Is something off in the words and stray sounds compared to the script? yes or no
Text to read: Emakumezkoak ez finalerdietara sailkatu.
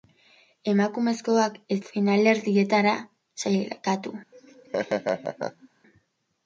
yes